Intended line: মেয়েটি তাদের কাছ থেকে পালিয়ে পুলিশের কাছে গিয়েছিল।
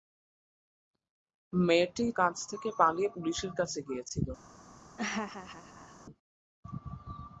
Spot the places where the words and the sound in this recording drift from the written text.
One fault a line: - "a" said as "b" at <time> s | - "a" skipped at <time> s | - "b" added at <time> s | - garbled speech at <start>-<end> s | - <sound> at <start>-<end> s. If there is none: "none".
- "তাদের" skipped at 2.0 s
- laugh at 5.0-6.1 s